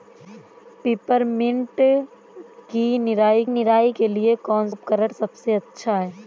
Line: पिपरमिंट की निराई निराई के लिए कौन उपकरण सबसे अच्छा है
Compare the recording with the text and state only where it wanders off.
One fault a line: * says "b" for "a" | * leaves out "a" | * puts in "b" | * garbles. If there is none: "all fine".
all fine